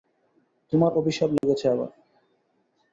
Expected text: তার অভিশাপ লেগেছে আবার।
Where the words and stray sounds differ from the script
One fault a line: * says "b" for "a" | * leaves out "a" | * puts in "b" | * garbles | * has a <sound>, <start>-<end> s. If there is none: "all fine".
* says "তোমার" for "তার"
* has a dropout, 1.4-1.4 s